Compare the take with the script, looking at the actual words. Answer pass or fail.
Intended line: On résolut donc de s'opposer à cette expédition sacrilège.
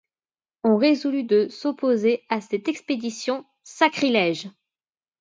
fail